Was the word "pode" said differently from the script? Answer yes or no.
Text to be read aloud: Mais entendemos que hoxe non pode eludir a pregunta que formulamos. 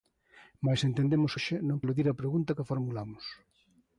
yes